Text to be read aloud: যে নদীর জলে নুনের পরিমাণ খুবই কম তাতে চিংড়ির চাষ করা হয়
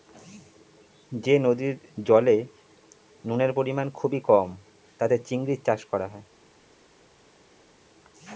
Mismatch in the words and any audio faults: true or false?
false